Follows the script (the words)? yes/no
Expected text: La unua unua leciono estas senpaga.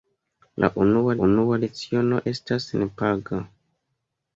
yes